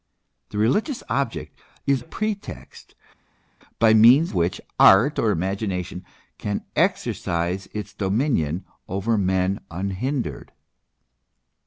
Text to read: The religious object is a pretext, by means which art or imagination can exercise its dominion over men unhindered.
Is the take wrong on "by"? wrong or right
right